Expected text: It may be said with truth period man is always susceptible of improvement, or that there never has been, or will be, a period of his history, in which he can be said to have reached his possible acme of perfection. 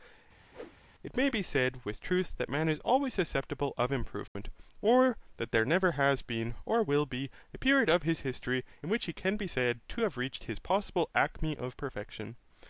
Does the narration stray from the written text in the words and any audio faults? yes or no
yes